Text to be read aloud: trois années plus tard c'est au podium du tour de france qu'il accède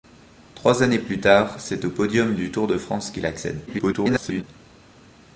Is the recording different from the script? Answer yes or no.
yes